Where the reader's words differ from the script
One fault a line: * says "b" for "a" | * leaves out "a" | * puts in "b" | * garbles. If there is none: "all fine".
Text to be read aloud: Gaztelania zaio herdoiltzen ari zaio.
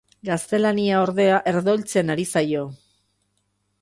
* says "ordea" for "zaio"